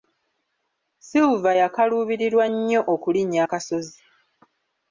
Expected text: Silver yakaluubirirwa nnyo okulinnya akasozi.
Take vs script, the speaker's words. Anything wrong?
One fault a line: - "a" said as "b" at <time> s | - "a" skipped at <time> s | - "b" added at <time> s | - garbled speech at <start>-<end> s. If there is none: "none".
none